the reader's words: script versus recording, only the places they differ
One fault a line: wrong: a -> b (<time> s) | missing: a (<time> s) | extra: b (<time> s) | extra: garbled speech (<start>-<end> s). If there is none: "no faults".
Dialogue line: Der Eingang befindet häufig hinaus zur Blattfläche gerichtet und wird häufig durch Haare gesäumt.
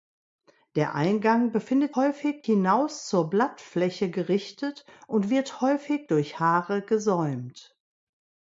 no faults